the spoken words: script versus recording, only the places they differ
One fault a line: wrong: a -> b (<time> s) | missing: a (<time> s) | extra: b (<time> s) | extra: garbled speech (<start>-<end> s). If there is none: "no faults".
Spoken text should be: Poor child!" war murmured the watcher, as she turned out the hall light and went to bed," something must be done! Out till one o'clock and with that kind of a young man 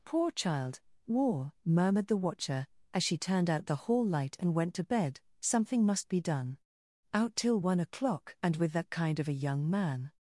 no faults